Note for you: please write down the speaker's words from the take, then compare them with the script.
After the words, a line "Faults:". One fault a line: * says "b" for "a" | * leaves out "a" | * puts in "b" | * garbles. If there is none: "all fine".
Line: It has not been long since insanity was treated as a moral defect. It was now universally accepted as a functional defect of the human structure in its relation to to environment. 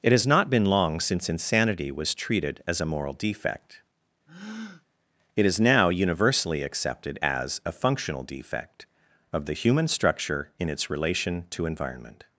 It has not been long since insanity was treated as a moral defect. It is now universally accepted as a functional defect of the human structure in its relation to environment.
Faults:
* says "is" for "was"
* leaves out "to"